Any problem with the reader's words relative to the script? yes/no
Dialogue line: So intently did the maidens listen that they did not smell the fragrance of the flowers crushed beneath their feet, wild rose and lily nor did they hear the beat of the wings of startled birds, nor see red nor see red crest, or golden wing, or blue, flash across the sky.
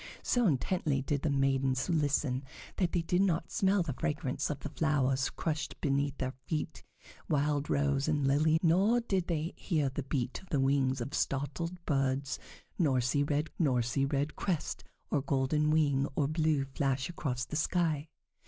no